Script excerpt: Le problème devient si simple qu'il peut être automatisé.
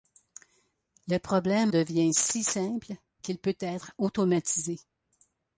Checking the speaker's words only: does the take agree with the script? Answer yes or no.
yes